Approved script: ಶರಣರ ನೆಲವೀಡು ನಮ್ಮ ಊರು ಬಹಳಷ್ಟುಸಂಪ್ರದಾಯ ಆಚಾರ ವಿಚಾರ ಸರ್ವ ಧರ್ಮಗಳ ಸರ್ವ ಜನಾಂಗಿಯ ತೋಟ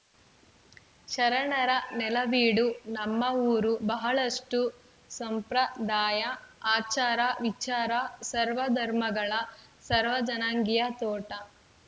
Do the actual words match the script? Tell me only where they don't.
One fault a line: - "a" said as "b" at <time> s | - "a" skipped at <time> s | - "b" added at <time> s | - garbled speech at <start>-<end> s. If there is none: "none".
none